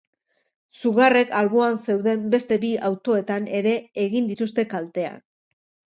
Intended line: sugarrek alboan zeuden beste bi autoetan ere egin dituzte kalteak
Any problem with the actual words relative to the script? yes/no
no